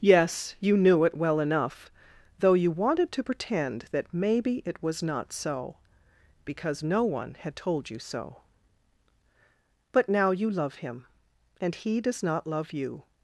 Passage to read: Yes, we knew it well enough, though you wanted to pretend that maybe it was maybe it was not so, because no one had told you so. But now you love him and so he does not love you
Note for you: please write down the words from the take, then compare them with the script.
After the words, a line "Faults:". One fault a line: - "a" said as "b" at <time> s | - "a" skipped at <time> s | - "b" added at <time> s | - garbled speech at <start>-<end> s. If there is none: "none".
Yes, you knew it well enough, though you wanted to pretend that maybe it was not so, because no one had told you so. But now you love him and he does not love you
Faults:
- "we" said as "you" at 0.6 s
- "maybe it was" skipped at 5.0 s
- "so" skipped at 11.8 s